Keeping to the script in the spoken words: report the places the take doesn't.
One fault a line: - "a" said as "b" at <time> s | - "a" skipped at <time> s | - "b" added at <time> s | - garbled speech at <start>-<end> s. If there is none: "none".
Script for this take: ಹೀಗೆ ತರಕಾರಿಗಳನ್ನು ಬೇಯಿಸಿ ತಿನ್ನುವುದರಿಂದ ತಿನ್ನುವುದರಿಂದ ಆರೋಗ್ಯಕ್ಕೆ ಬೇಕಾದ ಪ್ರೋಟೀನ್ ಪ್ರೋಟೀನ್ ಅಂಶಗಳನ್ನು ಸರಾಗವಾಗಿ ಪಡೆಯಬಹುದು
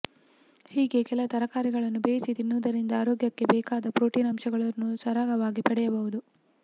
- "ಕೆಲ" added at 1.0 s
- "ತಿನ್ನುವುದರಿಂದ" skipped at 2.9 s
- "ಪ್ರೋಟೀನ್" skipped at 4.3 s